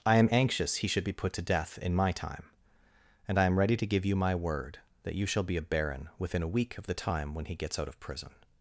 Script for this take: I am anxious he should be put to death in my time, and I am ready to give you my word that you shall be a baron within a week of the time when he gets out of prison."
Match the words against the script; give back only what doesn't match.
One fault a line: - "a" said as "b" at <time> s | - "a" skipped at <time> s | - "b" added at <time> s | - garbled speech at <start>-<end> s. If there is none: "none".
none